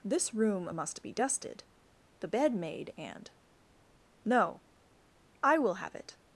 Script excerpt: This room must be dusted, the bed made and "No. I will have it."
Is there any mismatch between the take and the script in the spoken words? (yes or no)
no